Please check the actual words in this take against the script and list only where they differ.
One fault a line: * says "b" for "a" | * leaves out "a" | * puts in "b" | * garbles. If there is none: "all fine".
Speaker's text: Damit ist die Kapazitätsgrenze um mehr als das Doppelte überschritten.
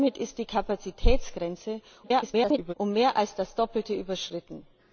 * garbles